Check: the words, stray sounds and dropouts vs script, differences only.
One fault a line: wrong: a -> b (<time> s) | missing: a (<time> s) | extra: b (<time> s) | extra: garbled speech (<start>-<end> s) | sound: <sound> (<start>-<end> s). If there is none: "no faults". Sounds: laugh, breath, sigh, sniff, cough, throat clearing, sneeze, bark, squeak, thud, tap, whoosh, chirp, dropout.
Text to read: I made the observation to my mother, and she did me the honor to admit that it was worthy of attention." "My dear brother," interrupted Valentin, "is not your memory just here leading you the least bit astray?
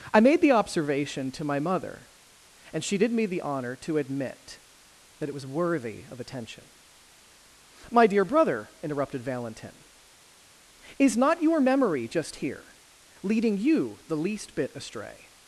no faults